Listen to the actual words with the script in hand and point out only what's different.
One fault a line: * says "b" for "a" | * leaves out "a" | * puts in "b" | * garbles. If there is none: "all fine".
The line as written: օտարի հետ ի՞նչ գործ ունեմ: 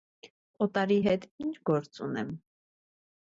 all fine